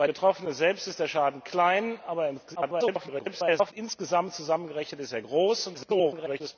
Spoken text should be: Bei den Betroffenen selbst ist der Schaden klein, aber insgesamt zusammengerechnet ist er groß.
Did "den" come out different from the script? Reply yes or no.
yes